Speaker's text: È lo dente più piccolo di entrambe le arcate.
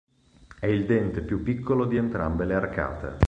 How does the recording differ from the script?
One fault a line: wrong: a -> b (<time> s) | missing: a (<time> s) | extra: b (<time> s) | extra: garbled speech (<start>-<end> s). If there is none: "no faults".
wrong: lo -> il (0.7 s)